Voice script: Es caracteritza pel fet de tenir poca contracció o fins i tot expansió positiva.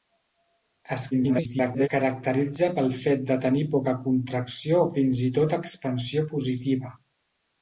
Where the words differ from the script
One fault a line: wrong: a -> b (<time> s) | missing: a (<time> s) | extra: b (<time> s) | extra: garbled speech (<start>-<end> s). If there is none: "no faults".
extra: garbled speech (1.1-1.9 s)